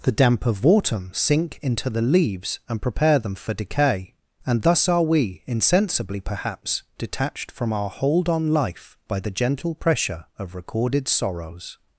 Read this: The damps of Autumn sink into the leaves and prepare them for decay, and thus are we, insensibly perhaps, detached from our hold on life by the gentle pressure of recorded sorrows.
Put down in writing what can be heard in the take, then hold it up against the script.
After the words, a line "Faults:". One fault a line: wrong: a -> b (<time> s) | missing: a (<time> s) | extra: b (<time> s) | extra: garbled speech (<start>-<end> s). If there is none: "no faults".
The damp of Autumn sink into the leaves and prepare them for decay, and thus are we, insensibly perhaps, detached from our hold on life by the gentle pressure of recorded sorrows.
Faults:
wrong: damps -> damp (0.1 s)